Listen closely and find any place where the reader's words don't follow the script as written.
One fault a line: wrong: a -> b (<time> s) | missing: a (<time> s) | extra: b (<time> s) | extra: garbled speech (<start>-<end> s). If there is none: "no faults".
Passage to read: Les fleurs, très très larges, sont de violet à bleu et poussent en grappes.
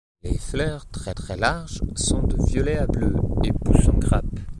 no faults